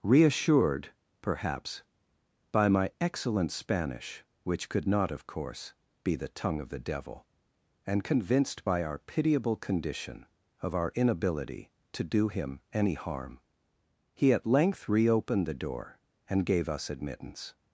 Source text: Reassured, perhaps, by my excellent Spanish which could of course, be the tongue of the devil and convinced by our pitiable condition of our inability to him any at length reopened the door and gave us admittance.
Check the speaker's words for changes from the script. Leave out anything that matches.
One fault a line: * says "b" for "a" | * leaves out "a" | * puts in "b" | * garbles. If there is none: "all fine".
* puts in "not"
* puts in "do"
* puts in "harm he"